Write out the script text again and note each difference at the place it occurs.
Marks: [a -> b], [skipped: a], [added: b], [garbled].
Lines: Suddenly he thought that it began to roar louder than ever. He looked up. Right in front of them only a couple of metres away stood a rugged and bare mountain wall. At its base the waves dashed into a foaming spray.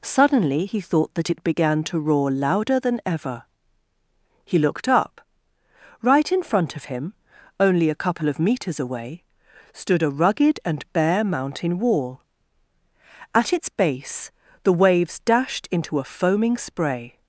Suddenly he thought that it began to roar louder than ever. He looked up. Right in front of [them -> him] only a couple of metres away stood a rugged and bare mountain wall. At its base the waves dashed into a foaming spray.